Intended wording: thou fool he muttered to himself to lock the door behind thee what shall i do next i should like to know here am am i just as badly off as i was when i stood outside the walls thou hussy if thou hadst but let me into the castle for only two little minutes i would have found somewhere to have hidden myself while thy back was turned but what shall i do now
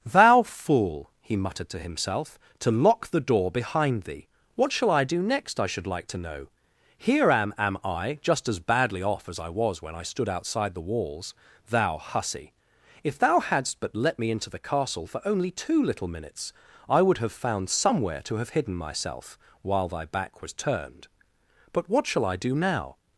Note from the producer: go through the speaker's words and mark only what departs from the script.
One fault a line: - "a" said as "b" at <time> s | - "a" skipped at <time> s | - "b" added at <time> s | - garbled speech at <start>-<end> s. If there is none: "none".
none